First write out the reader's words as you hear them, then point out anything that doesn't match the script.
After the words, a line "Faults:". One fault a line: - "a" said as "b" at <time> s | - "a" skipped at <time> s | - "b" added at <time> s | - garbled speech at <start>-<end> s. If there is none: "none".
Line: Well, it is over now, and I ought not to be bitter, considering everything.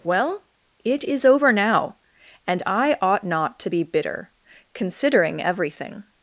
Well, it is over now, and I ought not to be bitter, considering everything.
Faults:
none